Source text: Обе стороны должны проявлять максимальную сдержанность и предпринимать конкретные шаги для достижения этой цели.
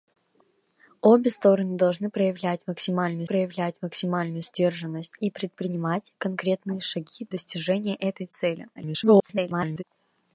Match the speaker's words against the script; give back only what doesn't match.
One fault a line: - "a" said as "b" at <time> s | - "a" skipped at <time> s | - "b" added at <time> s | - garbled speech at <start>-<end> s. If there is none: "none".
- "проявлять максимальную" added at 3.2 s
- "для" skipped at 7.3 s
- garbled speech at 8.7-9.8 s